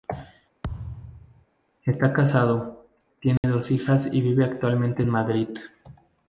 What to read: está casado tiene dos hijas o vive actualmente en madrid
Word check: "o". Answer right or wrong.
wrong